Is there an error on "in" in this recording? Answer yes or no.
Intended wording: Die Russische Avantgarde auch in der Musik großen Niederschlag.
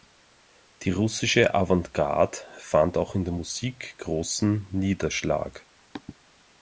no